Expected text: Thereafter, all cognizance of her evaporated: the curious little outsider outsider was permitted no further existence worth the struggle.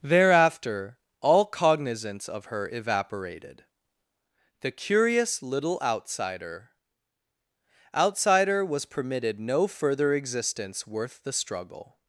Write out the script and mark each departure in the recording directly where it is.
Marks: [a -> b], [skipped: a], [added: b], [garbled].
Thereafter, all cognizance of her evaporated: the curious little outsider outsider was permitted no further existence worth the struggle.